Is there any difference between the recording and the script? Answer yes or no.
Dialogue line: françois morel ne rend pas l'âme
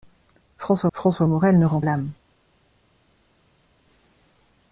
yes